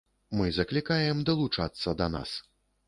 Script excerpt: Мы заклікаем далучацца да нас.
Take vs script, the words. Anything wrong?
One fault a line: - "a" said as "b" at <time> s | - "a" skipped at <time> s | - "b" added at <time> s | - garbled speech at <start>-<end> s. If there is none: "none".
none